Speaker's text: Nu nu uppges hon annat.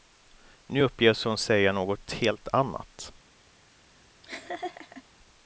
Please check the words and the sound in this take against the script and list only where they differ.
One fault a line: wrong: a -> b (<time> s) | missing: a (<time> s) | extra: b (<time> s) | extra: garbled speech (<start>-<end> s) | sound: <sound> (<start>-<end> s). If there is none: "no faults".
missing: nu (0.8 s)
extra: säga något helt (1.4 s)
sound: laugh (4.2-5.0 s)